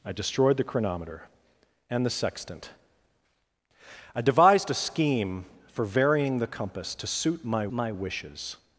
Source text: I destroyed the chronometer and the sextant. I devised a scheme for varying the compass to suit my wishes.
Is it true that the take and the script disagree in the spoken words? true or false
true